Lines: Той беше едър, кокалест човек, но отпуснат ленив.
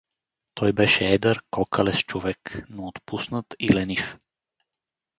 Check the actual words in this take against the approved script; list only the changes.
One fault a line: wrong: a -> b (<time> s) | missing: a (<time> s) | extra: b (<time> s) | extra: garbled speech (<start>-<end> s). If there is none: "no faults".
extra: и (3.6 s)